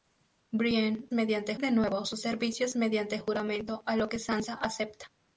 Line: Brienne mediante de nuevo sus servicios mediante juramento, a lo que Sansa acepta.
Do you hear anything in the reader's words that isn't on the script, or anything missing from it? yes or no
no